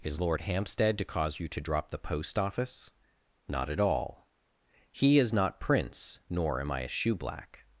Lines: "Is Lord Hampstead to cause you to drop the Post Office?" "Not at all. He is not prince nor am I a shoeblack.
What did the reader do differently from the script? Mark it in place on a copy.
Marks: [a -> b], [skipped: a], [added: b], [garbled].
"Is Lord Hampstead to cause you to drop the Post Office?" "Not at all. He is not prince nor am I a shoeblack.